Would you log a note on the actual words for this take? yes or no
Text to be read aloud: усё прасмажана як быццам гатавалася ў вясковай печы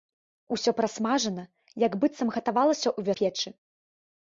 yes